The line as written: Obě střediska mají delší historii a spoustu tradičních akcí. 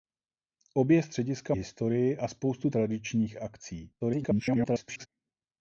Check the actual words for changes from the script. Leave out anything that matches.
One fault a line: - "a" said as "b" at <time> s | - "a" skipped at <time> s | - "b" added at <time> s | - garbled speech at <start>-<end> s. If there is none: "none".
- "mají delší" skipped at 1.6 s
- garbled speech at 4.0-5.1 s